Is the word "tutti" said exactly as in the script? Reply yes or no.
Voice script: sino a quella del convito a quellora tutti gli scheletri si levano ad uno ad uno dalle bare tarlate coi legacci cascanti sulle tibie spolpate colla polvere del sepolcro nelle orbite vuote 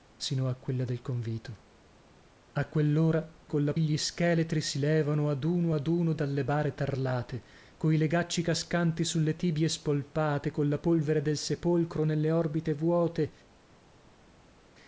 no